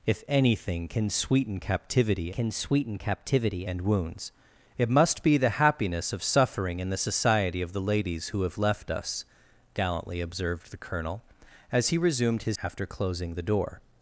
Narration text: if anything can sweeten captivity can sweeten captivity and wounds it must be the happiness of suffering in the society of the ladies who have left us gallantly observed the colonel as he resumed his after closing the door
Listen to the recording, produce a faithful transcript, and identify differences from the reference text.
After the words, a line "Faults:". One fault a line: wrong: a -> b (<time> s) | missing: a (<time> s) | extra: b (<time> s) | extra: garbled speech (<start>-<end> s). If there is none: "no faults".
if anything can sweeten captivity can sweeten captivity and wounds it must be the happiness of suffering in the society of the ladies who have left us gallantly observed the colonel as he resumed his after closing the door
Faults:
no faults